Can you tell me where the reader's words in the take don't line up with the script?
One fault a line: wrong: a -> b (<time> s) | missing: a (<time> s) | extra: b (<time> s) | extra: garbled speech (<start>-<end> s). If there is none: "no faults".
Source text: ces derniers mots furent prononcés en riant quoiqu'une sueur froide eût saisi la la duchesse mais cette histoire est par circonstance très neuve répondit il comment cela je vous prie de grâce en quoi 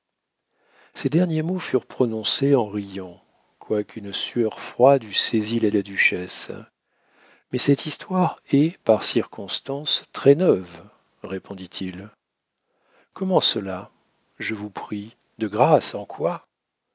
no faults